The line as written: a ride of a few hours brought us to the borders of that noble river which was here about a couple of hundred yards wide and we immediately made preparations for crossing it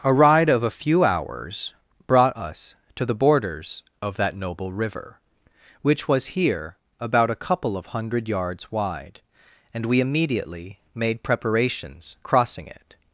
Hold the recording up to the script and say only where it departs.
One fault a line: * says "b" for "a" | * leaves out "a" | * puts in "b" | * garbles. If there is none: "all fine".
* leaves out "for"